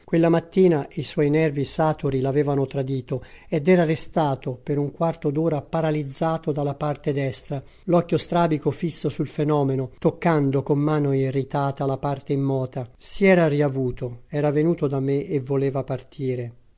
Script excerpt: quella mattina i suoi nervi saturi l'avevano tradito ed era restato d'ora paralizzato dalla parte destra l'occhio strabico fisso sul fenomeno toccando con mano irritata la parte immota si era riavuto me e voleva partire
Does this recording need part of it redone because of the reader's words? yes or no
yes